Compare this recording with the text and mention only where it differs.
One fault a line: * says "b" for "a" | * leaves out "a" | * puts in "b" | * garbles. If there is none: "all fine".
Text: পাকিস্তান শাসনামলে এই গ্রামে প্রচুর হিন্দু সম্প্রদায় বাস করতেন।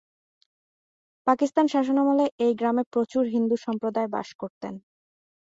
all fine